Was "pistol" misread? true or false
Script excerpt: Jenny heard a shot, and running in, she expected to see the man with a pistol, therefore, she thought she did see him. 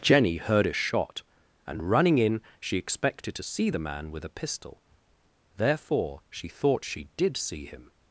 false